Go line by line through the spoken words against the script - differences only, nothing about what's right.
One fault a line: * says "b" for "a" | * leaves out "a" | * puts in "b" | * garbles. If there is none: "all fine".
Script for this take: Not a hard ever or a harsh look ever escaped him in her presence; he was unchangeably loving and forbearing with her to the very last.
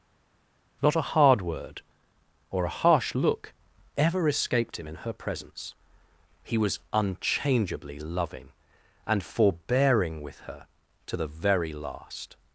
* says "word" for "ever"